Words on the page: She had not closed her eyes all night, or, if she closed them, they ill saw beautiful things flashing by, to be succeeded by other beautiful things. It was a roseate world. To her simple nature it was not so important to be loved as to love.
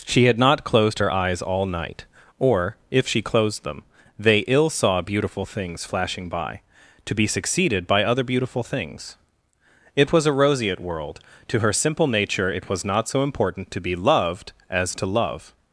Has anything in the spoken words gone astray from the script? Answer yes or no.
no